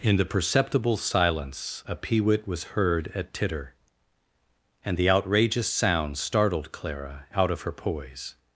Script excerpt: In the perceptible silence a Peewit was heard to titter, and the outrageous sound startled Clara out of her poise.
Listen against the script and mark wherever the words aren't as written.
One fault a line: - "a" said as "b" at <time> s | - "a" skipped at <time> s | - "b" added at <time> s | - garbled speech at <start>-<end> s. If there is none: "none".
- "to" said as "at" at 3.1 s